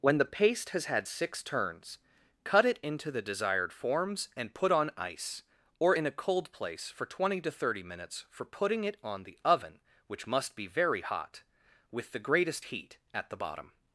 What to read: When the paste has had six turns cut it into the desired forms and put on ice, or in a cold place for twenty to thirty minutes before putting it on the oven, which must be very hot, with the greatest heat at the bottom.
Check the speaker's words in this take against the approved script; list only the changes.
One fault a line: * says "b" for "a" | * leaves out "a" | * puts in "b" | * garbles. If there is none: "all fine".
* says "for" for "before"